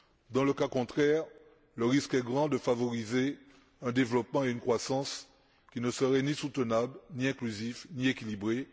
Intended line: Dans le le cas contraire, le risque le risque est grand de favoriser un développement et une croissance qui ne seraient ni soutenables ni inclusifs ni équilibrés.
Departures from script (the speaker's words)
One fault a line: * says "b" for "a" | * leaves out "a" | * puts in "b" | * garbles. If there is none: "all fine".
* leaves out "le"
* leaves out "le risque"